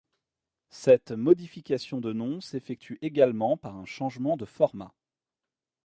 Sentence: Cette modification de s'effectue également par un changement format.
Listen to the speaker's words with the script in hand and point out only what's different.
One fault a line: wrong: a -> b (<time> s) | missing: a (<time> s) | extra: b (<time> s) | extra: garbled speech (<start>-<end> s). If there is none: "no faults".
extra: nom (2.1 s)
extra: de (4.3 s)